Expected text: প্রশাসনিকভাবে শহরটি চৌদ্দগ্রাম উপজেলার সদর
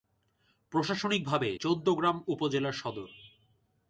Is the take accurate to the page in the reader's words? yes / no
no